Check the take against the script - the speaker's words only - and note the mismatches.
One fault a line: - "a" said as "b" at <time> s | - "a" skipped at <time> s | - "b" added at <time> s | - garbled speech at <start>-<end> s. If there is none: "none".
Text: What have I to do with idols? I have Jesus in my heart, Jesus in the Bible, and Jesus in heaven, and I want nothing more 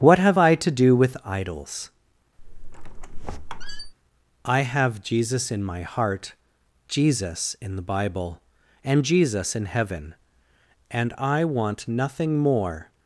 none